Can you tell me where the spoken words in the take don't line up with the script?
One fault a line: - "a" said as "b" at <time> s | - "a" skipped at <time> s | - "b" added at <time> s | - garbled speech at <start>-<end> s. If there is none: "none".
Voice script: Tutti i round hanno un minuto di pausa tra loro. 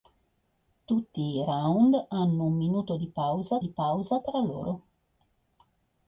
- "di pausa" added at 3.6 s